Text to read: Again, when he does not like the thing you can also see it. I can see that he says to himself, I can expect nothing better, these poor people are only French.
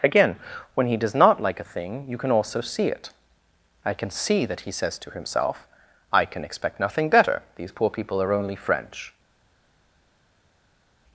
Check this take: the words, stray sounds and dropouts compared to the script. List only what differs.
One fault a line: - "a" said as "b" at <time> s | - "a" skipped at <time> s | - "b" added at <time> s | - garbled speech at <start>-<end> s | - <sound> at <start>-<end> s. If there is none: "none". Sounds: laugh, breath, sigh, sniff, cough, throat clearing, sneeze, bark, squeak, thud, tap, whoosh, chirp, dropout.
- "the" said as "a" at 1.6 s